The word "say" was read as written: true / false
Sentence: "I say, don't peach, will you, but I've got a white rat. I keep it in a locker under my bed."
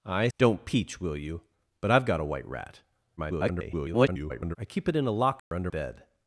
false